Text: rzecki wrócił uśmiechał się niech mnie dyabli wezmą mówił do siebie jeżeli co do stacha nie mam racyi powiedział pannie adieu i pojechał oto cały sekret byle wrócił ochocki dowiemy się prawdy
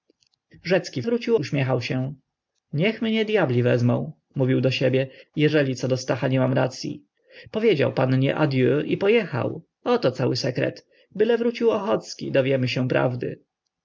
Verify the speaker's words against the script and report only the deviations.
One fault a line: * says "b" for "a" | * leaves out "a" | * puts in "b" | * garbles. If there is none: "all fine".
all fine